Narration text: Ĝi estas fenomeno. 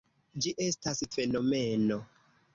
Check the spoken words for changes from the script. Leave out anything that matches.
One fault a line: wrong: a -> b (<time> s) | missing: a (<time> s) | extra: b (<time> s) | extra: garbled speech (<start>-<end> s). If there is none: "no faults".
no faults